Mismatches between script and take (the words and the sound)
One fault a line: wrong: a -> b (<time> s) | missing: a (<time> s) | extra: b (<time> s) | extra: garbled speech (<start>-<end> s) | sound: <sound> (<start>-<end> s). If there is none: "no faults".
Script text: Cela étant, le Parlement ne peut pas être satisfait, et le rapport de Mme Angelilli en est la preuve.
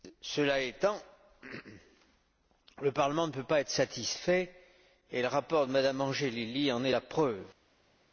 no faults